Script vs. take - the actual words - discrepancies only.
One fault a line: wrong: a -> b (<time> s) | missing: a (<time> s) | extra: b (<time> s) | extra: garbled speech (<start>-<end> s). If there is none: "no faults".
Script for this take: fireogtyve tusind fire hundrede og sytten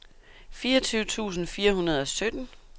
no faults